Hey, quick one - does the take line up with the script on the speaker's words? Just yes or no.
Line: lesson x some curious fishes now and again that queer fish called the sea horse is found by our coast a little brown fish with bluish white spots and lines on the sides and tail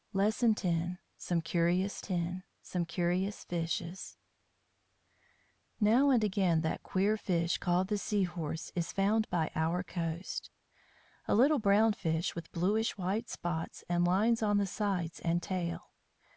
no